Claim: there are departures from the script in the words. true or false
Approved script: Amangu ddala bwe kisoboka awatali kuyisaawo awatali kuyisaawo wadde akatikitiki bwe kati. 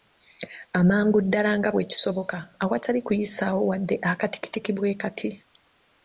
true